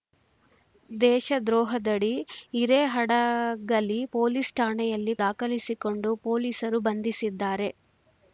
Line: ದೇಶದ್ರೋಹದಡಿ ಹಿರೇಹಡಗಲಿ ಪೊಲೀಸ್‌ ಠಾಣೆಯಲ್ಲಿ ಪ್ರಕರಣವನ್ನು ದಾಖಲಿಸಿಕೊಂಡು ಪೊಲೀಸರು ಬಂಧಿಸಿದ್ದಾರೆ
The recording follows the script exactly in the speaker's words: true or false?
false